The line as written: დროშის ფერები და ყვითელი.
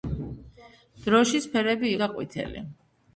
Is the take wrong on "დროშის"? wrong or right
right